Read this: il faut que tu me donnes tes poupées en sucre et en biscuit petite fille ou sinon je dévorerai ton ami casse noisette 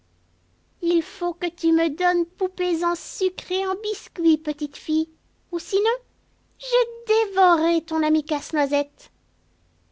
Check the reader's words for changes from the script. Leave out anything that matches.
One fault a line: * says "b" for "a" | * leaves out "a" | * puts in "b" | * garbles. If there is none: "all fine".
* leaves out "tes"